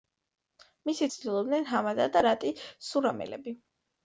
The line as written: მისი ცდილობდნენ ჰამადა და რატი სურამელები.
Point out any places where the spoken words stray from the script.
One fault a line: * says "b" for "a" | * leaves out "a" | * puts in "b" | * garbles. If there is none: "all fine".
all fine